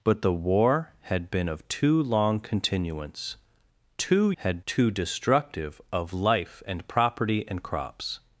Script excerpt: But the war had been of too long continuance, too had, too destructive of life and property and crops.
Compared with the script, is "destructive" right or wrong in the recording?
right